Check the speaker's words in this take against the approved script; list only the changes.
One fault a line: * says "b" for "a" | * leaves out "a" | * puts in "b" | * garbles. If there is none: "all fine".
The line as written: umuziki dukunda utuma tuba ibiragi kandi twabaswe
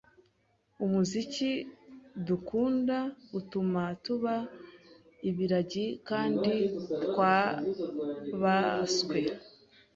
all fine